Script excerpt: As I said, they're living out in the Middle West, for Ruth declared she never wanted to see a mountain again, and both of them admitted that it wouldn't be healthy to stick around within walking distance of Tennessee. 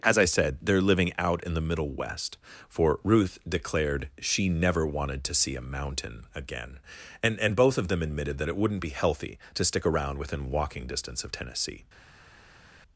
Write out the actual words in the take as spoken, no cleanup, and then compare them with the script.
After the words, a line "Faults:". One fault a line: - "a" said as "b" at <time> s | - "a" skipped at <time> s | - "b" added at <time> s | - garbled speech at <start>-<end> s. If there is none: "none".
As I said, they're living out in the Middle West, for Ruth declared she never wanted to see a mountain again, and and both of them admitted that it wouldn't be healthy to stick around within walking distance of Tennessee.
Faults:
- "and" added at 7.4 s